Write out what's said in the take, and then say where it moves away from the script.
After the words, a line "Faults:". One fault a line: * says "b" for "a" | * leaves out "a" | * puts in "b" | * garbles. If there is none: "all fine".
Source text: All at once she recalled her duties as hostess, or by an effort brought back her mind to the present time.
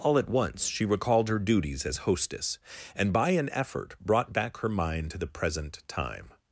All at once she recalled her duties as hostess, and by an effort brought back her mind to the present time.
Faults:
* says "and" for "or"